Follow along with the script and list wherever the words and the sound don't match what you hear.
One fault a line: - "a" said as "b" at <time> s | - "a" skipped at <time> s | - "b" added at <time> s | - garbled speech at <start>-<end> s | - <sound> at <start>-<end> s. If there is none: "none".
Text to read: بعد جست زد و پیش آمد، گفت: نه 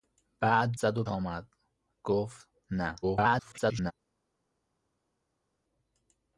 - "جست" skipped at 0.7 s
- "پیش" skipped at 1.0 s
- garbled speech at 3.0-3.9 s